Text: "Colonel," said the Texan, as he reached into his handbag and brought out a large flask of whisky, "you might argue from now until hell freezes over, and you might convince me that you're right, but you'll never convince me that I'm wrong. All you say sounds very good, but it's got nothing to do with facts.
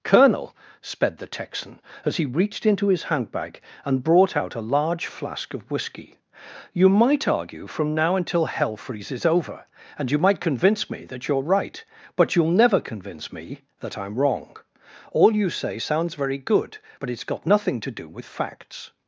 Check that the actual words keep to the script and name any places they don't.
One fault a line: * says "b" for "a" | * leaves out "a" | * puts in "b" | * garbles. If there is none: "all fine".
* says "sped" for "said"